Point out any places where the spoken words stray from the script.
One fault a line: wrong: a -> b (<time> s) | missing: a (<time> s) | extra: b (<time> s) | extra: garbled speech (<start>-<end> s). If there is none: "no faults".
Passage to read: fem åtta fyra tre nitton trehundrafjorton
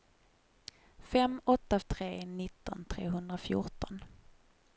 missing: fyra (1.8 s)